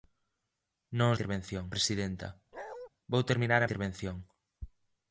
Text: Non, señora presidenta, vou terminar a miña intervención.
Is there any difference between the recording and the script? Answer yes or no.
yes